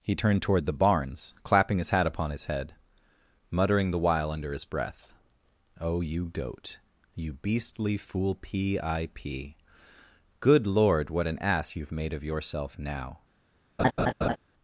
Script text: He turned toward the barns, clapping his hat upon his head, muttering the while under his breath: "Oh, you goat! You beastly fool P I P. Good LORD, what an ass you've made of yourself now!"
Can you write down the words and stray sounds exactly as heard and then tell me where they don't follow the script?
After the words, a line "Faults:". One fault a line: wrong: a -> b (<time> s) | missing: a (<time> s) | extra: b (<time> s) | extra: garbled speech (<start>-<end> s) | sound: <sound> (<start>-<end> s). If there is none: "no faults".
He turned toward the barns, clapping his hat upon his head, muttering the while under his breath: "Oh, you goat! You beastly fool P I P. Good LORD, what an ass you've made of yourself now!"
Faults:
sound: laugh (13.8-14.4 s)